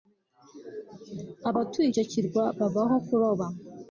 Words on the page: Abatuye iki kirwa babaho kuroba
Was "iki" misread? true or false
true